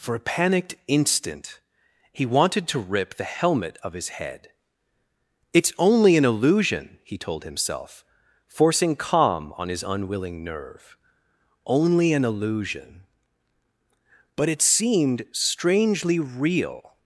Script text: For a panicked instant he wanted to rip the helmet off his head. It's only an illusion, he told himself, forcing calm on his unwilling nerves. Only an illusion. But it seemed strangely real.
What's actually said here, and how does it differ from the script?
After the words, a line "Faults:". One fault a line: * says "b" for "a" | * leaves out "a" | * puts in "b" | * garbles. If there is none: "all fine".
For a panicked instant he wanted to rip the helmet of his head. It's only an illusion, he told himself, forcing calm on his unwilling nerve. Only an illusion. But it seemed strangely real.
Faults:
* says "of" for "off"
* says "nerve" for "nerves"